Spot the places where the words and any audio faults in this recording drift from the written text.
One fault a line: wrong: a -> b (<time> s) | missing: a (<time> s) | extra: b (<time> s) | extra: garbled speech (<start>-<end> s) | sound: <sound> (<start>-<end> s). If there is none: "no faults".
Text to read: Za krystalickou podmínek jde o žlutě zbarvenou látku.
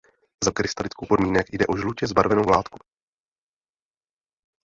no faults